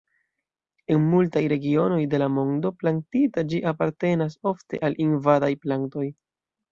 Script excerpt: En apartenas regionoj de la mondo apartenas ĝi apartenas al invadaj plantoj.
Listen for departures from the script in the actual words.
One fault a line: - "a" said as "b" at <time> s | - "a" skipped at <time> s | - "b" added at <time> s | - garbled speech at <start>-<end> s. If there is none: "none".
- "apartenas" said as "multaj" at 1.1 s
- "apartenas" said as "plantita" at 2.8 s
- "ofte" added at 4.5 s